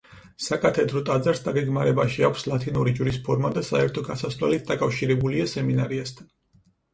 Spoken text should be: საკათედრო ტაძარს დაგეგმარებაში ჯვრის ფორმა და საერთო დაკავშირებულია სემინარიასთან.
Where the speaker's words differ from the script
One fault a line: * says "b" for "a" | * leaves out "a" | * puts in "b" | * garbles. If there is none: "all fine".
* puts in "აქვს ლათინური"
* puts in "გასასვლელით"